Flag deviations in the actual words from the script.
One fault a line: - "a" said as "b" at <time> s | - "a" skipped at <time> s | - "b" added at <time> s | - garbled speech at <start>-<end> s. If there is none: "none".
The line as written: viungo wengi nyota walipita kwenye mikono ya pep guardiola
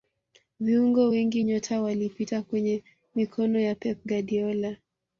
none